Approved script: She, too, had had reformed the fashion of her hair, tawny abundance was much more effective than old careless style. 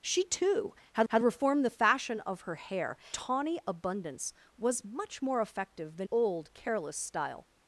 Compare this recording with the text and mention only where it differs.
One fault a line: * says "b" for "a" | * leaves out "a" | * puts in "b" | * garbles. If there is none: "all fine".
all fine